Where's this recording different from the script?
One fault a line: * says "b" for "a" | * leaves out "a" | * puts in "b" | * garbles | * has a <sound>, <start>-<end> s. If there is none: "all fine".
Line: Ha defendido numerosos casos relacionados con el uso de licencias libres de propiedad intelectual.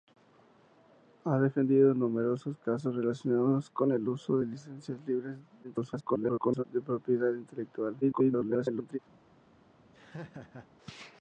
* garbles
* garbles
* has a laugh, 9.9-10.7 s